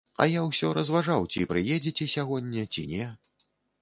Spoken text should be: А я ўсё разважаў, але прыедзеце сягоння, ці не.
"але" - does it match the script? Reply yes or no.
no